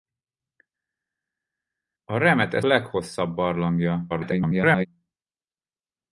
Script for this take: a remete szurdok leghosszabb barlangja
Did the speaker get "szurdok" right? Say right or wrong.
wrong